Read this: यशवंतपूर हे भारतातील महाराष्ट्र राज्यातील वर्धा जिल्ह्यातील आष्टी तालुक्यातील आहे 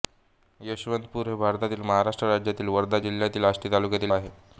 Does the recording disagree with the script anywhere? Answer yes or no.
no